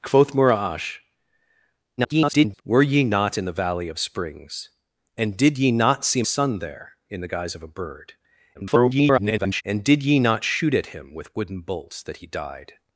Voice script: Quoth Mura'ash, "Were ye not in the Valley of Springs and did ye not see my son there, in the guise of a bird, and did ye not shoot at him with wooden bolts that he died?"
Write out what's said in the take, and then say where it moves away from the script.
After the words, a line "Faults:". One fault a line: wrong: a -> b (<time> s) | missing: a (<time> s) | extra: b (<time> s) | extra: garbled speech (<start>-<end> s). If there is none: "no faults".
Quoth Mura'ash, [garbled] "Were ye not in the Valley of Springs and did ye not see son there, in the guise of a bird, [garbled] and did ye not shoot at him with wooden bolts that he died?"
Faults:
extra: garbled speech (2.0-2.6 s)
missing: my (6.2 s)
extra: garbled speech (8.5-9.6 s)